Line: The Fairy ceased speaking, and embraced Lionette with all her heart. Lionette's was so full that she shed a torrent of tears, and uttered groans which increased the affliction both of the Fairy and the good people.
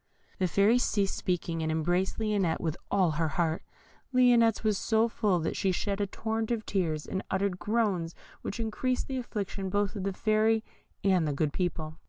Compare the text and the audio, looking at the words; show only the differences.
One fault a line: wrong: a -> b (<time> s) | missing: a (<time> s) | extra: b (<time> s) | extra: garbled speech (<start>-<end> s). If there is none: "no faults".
no faults